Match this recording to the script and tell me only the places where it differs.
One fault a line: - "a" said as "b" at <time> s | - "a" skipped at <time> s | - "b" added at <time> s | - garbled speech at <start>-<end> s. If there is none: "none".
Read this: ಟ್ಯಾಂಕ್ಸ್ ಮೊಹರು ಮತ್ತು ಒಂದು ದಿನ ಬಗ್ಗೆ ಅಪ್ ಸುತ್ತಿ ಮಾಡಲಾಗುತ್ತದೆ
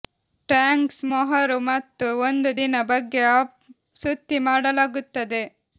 none